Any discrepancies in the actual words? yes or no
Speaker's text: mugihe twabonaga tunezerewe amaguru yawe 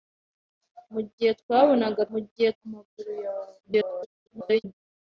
yes